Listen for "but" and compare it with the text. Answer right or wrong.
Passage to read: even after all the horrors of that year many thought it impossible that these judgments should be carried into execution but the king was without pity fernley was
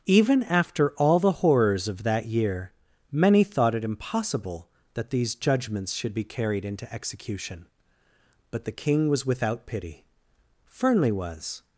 right